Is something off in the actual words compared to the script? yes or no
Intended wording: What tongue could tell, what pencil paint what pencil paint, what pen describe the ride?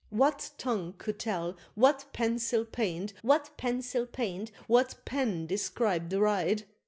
no